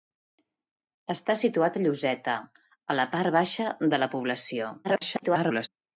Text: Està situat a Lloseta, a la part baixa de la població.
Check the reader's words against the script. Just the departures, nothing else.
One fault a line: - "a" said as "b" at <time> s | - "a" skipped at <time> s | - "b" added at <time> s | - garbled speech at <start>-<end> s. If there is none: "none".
- garbled speech at 4.8-5.7 s